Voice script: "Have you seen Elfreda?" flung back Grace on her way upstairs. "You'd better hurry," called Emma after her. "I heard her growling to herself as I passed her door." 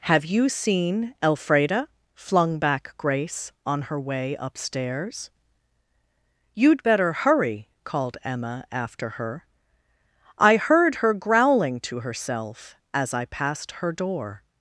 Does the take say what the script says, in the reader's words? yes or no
yes